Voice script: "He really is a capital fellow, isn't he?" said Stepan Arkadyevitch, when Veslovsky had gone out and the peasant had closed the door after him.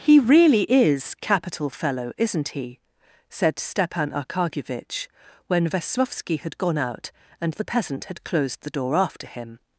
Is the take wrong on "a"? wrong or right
wrong